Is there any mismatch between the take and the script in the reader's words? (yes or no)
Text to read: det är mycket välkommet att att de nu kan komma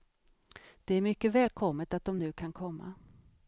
yes